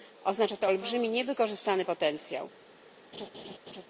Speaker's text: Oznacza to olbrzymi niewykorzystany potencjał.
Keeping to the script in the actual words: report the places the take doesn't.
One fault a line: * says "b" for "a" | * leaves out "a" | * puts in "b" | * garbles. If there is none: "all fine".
all fine